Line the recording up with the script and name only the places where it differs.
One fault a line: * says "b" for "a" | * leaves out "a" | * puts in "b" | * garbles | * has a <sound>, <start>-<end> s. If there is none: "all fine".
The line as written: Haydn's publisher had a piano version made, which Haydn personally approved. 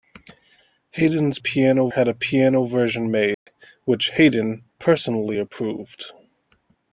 * says "piano" for "publisher"
* has a dropout, 3.3-3.5 s